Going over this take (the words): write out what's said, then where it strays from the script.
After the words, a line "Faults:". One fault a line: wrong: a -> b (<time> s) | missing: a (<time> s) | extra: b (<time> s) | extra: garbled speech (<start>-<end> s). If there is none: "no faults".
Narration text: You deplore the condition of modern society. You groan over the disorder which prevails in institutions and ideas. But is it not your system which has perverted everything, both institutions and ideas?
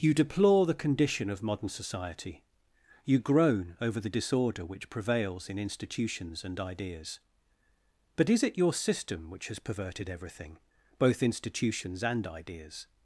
You deplore the condition of modern society. You groan over the disorder which prevails in institutions and ideas. But is it your system which has perverted everything, both institutions and ideas?
Faults:
missing: not (8.6 s)